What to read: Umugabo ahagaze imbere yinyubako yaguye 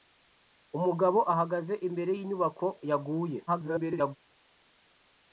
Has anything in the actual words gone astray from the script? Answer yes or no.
yes